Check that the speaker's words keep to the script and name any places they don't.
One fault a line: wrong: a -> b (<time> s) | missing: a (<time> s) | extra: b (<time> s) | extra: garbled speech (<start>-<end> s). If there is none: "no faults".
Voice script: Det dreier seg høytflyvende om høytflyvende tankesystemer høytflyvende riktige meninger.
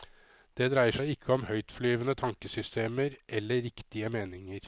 wrong: høytflyvende -> ikke (1.1 s)
wrong: høytflyvende -> eller (3.3 s)